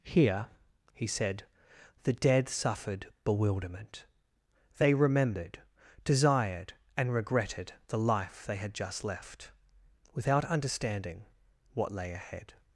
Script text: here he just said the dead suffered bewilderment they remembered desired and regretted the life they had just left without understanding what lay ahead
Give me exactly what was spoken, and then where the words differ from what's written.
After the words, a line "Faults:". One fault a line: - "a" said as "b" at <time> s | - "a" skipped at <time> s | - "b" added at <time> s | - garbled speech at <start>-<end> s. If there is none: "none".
here he said the dead suffered bewilderment they remembered desired and regretted the life they had just left without understanding what lay ahead
Faults:
- "just" skipped at 1.1 s